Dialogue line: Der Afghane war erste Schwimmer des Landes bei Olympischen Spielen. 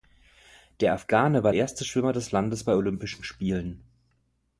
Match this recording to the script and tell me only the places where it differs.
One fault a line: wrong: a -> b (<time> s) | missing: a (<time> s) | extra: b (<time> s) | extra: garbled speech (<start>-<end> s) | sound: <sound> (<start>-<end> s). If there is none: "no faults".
no faults